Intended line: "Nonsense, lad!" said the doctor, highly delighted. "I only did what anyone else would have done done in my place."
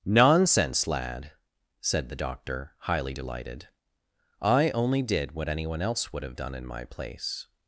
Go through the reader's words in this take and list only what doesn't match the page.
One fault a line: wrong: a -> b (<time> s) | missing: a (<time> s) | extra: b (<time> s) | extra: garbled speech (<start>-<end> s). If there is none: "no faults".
missing: done (6.5 s)